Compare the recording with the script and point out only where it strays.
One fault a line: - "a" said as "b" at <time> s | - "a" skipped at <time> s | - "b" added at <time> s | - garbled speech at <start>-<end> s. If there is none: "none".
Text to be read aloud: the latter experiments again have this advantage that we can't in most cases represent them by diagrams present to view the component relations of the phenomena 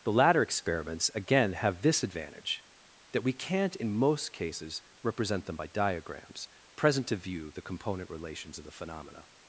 none